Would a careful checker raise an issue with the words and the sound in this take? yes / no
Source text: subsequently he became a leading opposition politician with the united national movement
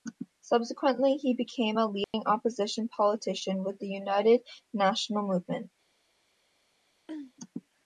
yes